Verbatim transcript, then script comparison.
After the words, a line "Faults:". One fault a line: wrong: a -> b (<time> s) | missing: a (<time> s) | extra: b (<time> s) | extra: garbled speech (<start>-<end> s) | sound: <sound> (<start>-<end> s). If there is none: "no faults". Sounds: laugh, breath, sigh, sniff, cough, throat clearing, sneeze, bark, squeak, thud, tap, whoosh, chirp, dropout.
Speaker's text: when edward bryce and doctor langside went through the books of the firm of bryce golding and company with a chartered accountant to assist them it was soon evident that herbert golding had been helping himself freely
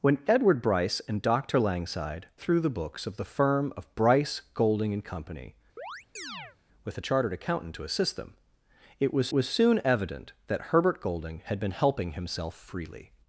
when edward bryce and doctor langside through the books of the firm of bryce golding and company with a chartered accountant to assist them it was was soon evident that herbert golding had been helping himself freely
Faults:
missing: went (2.2 s)
sound: chirp (5.8-6.6 s)
extra: was (9.3 s)